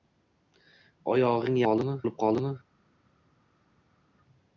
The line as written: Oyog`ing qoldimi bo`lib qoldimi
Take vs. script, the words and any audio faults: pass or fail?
pass